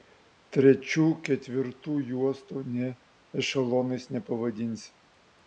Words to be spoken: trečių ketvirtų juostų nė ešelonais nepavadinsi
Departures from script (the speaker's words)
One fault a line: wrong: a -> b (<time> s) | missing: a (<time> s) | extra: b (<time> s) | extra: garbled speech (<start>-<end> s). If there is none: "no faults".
no faults